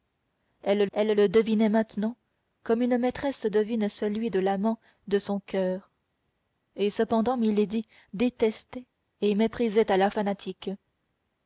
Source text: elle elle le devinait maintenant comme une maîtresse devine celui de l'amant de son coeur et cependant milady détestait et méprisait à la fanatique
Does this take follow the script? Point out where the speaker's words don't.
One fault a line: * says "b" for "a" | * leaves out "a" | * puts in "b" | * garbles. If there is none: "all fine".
all fine